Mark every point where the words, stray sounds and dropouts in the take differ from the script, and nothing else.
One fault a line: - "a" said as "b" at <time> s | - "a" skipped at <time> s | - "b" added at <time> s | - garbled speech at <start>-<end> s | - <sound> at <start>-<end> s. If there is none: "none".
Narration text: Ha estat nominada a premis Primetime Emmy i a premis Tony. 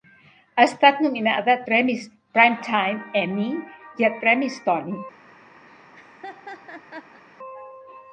- laugh at 5.7-7.2 s